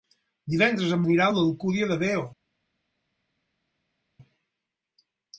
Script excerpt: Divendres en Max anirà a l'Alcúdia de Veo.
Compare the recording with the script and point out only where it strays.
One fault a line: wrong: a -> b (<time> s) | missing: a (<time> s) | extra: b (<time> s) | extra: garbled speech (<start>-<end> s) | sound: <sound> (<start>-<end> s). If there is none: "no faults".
missing: Max (1.0 s)